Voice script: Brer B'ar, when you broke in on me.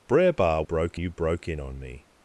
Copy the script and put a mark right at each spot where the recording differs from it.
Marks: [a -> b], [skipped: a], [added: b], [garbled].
Brer B'ar, [when -> broke] you broke in on me.